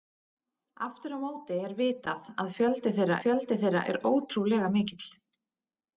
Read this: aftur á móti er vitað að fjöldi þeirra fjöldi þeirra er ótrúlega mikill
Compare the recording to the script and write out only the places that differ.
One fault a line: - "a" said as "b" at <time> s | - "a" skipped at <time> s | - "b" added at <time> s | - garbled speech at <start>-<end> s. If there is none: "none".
none